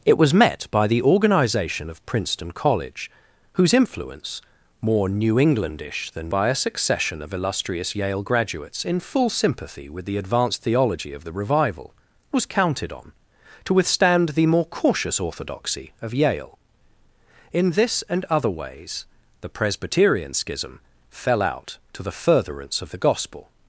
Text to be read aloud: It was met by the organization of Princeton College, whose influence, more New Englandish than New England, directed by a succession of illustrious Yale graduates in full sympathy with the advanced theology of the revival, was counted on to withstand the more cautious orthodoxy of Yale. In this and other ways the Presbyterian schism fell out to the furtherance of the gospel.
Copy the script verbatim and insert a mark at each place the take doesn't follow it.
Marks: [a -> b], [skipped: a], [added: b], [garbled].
It was met by the organization of Princeton College, whose influence, more New Englandish than [skipped: New England, directed] by a succession of illustrious Yale graduates in full sympathy with the advanced theology of the revival, was counted on to withstand the more cautious orthodoxy of Yale. In this and other ways the Presbyterian schism fell out to the furtherance of the gospel.